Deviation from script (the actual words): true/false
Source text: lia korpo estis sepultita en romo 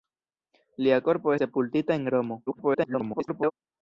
true